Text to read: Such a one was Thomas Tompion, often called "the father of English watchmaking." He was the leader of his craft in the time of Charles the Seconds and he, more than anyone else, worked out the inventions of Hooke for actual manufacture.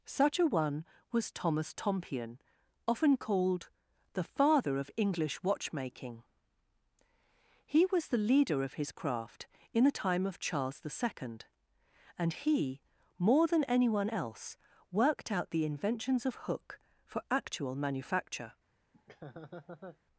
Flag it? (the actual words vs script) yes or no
yes